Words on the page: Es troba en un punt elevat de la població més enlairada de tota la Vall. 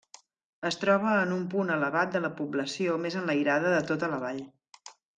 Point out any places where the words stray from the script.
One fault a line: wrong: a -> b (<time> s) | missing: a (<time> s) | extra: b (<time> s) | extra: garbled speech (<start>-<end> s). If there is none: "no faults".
no faults